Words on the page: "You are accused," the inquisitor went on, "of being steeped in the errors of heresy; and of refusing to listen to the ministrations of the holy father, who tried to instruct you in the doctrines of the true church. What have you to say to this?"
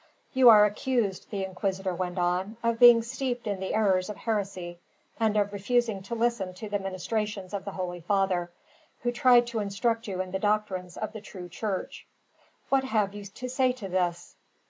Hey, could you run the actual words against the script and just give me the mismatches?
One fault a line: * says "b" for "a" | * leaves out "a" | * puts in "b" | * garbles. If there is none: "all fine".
all fine